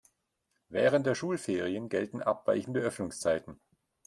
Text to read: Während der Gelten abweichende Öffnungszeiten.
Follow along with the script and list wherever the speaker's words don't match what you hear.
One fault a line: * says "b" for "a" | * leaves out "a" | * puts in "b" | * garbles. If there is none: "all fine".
* puts in "Schulferien"